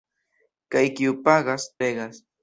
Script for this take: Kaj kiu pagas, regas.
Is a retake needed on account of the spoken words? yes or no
no